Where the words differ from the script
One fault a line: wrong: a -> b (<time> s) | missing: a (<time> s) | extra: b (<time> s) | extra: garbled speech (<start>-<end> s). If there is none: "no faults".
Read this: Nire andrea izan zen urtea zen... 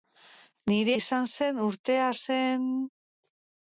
missing: andrea (0.9 s)